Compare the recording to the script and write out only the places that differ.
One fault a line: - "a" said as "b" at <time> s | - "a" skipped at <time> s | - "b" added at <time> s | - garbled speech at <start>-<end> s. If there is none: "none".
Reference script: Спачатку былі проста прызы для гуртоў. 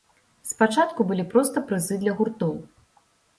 none